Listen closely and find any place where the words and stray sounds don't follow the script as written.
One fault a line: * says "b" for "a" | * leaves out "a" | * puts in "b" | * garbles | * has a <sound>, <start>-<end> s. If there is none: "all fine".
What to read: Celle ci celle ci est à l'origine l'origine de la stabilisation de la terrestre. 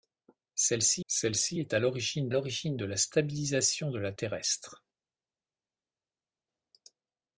all fine